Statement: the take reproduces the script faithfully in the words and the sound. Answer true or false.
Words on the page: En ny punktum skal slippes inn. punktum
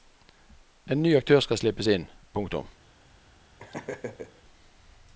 false